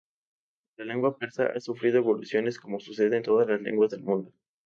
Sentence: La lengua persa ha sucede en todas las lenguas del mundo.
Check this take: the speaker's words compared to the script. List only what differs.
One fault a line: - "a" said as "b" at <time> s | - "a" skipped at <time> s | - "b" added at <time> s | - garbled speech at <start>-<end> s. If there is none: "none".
- "sufrido evoluciones como" added at 1.6 s